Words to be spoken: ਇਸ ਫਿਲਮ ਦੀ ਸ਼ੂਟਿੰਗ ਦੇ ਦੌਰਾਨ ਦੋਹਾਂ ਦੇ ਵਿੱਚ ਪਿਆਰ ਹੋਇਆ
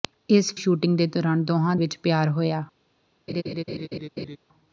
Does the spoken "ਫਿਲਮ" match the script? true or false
false